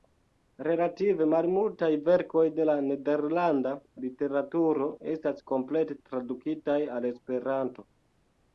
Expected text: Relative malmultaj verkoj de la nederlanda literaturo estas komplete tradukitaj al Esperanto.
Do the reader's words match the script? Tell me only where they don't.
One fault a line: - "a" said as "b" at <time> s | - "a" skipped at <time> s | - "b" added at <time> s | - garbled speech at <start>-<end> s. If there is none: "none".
none